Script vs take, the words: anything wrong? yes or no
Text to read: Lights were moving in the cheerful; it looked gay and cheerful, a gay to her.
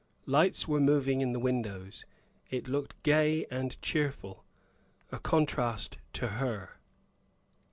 yes